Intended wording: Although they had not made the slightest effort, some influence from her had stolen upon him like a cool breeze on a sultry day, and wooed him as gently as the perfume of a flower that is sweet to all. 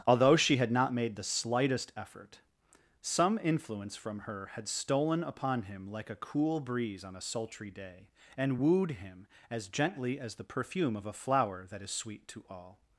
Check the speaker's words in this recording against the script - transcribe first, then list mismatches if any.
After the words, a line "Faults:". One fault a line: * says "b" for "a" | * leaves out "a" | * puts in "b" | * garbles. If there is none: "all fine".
Although she had not made the slightest effort, some influence from her had stolen upon him like a cool breeze on a sultry day, and wooed him as gently as the perfume of a flower that is sweet to all.
Faults:
* says "she" for "they"